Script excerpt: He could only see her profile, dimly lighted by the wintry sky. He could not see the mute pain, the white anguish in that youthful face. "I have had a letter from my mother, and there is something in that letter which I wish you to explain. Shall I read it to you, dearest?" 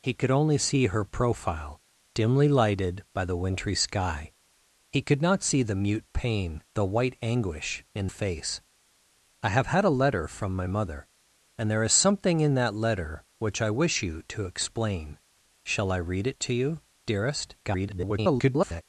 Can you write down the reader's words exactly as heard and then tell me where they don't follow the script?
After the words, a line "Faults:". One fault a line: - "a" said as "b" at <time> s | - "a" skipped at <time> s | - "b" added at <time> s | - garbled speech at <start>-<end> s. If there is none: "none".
He could only see her profile, dimly lighted by the wintry sky. He could not see the mute pain, the white anguish in face. "I have had a letter from my mother, and there is something in that letter which I wish you to explain. Shall I read it to you, dearest?" [garbled]
Faults:
- "that youthful" skipped at 8.1 s
- garbled speech at 17.6-18.8 s